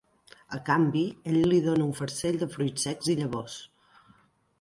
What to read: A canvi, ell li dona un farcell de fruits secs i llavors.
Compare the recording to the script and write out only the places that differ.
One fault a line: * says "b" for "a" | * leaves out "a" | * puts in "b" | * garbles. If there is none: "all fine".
all fine